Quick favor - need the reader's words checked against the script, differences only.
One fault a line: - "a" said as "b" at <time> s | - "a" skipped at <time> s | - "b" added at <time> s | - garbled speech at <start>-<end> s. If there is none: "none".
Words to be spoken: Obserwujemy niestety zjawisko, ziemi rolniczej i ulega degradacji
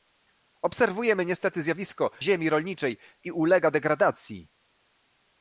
none